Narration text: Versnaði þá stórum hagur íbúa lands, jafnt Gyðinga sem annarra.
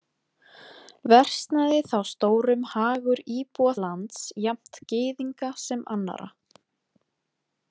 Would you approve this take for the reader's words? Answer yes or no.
yes